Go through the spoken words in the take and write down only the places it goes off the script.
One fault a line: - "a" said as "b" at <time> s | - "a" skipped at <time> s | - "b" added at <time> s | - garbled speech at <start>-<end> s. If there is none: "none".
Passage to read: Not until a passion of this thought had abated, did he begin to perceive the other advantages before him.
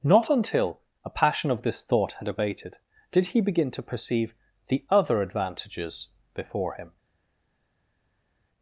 none